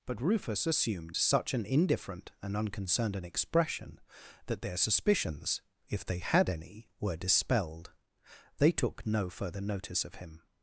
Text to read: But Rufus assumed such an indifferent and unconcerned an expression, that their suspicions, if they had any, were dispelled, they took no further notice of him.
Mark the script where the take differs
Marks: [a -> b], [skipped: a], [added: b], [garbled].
But Rufus assumed such an indifferent and unconcerned an expression, that their suspicions, if they had any, were dispelled, they took no further notice of him.